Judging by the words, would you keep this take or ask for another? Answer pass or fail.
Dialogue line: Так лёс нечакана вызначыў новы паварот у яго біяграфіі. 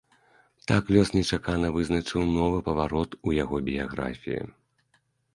pass